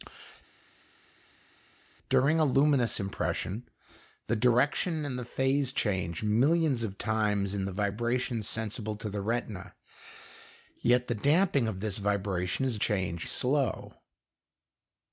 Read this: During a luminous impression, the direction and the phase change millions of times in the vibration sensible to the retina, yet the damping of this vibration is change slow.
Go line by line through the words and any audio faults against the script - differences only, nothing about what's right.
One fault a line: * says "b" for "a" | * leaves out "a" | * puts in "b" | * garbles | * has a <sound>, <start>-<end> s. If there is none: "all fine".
all fine